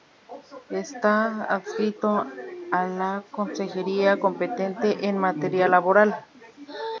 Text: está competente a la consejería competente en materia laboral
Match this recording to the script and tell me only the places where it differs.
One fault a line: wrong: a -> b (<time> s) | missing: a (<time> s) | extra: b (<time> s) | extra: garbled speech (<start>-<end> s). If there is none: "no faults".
wrong: competente -> adscrito (1.4 s)